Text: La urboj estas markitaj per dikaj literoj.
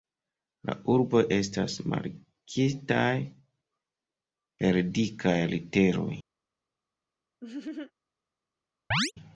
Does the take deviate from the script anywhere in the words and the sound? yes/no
yes